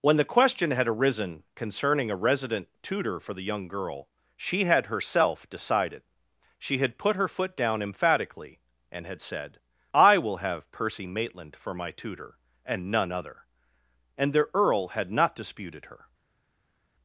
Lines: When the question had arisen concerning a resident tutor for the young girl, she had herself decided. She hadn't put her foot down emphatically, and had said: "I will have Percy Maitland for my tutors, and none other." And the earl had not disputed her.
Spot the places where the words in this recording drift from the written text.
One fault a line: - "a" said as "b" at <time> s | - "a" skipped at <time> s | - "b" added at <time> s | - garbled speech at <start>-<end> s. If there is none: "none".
- "hadn't" said as "had" at 6.8 s
- "tutors" said as "tutor" at 11.9 s